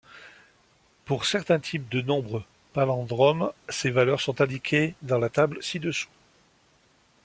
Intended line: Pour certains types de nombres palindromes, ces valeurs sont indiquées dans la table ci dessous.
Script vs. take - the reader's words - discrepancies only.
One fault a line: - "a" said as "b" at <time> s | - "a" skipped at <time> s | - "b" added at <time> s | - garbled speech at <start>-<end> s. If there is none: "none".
none